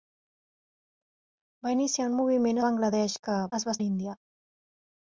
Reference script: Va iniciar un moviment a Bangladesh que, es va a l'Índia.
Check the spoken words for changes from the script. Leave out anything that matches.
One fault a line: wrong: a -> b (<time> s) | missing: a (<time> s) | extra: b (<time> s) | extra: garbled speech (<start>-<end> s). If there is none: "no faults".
no faults